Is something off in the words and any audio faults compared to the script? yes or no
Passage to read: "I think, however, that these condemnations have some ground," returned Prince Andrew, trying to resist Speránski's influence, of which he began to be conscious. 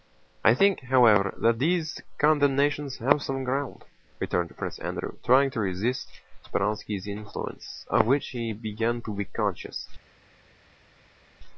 no